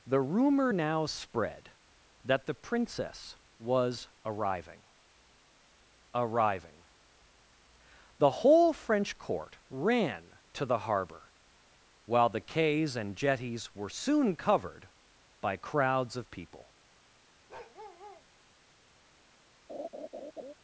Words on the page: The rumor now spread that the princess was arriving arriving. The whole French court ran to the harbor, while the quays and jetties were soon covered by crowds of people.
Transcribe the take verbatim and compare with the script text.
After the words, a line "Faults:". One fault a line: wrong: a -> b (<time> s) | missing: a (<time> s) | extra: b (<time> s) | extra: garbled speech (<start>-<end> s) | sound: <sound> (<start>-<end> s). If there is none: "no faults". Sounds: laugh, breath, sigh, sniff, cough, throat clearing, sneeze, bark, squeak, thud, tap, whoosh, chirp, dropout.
The rumor now spread that the princess was arriving arriving. The whole French court ran to the harbor, while the quays and jetties were soon covered by crowds of people.
Faults:
sound: bark (17.5-18.3 s)
sound: laugh (19.7-20.5 s)